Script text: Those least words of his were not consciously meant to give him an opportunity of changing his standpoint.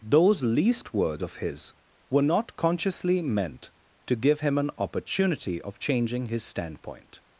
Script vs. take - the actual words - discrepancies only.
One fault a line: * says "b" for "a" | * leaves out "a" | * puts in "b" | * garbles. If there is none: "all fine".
all fine